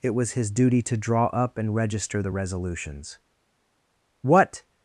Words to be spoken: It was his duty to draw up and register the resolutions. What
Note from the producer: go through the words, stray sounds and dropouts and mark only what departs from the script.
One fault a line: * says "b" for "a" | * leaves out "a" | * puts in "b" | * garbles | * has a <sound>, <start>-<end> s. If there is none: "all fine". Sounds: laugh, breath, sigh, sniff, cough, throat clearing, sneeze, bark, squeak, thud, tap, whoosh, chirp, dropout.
all fine